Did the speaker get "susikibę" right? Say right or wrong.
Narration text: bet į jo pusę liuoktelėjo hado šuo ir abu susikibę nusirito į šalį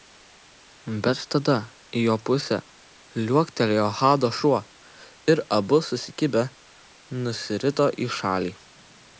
right